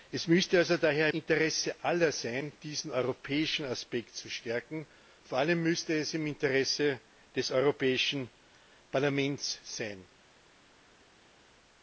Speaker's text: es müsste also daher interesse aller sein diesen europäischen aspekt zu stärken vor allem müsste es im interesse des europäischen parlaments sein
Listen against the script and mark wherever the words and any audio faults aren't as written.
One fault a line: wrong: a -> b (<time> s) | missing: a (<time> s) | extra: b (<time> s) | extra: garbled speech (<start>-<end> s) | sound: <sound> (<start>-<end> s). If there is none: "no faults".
no faults